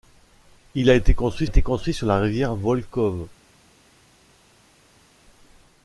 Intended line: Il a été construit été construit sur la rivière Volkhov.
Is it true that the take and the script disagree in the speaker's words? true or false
false